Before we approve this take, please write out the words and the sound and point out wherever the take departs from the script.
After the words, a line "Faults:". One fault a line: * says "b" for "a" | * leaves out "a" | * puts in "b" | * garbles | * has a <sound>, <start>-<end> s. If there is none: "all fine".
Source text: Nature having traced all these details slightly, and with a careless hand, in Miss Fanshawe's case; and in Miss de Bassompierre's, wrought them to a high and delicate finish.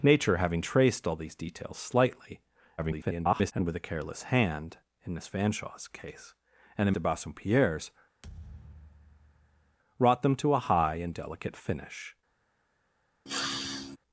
Nature having traced all these details slightly, [garbled] and with a careless hand, in Miss Fanshawe's case; and in De Bassompierre's, wrought them to a high and delicate finish.
Faults:
* garbles
* leaves out "Miss"
* has a thud, 8.2-9.8 s
* has a sniff, 13.3-14.0 s